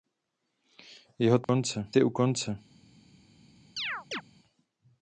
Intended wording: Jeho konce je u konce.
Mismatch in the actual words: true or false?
false